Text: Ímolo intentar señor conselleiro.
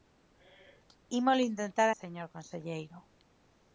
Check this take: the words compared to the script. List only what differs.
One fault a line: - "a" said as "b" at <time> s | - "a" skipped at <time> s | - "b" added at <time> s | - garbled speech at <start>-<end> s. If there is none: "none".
none